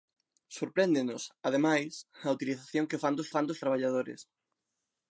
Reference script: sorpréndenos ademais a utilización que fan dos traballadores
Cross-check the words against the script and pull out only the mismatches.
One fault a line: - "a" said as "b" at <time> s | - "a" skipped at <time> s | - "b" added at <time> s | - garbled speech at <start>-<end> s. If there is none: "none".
- "fan dos" added at 3.3 s